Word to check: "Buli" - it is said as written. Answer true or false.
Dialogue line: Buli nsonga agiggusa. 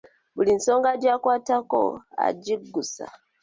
true